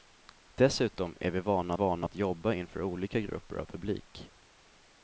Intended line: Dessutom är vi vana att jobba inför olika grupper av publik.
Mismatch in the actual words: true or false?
true